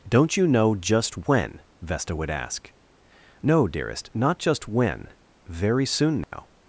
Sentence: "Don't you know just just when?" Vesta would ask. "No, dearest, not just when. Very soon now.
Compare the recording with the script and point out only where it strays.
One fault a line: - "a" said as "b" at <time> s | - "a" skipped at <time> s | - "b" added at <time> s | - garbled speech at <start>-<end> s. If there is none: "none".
- "just" skipped at 1.3 s